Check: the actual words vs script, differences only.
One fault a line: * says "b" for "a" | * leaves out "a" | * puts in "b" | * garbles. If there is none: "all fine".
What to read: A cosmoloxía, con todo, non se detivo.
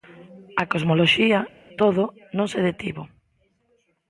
* leaves out "con"